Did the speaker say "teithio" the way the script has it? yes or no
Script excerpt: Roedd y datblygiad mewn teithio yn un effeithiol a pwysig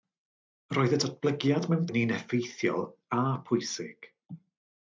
no